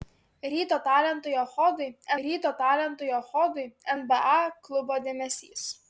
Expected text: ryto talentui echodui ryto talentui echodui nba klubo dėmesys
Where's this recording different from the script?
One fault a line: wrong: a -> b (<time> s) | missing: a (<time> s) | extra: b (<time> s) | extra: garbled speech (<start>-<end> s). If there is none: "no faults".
no faults